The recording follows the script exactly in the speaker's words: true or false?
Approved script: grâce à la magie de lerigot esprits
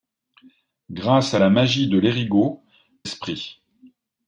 true